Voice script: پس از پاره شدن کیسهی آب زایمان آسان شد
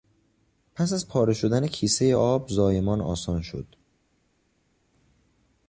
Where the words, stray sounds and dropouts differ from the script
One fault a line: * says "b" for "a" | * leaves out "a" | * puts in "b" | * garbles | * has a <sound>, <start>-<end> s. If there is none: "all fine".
all fine